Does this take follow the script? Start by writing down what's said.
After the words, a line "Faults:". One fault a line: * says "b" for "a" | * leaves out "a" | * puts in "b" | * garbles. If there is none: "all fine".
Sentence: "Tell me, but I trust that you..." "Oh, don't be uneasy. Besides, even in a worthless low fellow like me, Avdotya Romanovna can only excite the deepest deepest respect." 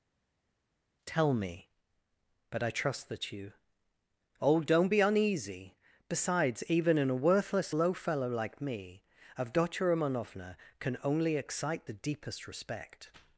"Tell me, but I trust that you..." "Oh, don't be uneasy. Besides, even in a worthless low fellow like me, Avdotya Romanovna can only excite the deepest respect."
Faults:
* leaves out "deepest"